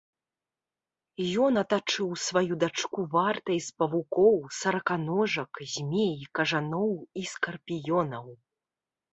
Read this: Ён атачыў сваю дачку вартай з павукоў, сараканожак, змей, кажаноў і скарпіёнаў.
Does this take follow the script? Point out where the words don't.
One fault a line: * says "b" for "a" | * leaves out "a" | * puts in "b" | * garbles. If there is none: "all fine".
all fine